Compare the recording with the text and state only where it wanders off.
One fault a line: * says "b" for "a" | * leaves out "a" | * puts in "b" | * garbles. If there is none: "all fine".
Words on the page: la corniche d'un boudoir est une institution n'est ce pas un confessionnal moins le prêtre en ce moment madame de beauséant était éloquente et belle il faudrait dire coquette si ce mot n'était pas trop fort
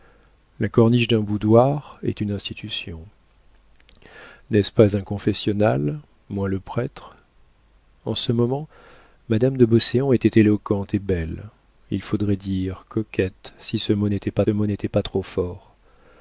* puts in "mot n'était pas"